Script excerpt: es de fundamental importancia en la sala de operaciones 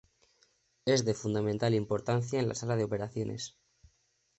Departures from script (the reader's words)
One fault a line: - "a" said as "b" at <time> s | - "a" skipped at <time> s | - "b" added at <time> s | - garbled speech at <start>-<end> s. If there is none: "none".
none